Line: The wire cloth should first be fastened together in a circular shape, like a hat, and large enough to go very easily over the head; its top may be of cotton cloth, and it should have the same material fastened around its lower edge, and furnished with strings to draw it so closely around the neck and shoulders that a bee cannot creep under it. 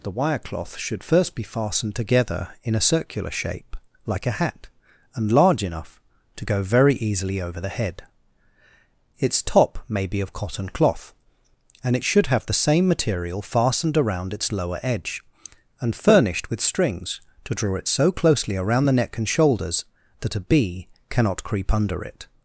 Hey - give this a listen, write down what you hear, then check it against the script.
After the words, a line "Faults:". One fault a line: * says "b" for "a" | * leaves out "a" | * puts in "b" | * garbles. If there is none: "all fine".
The wire cloth should first be fastened together in a circular shape, like a hat, and large enough to go very easily over the head; its top may be of cotton cloth, and it should have the same material fastened around its lower edge, and furnished with strings to draw it so closely around the neck and shoulders that a bee cannot creep under it.
Faults:
all fine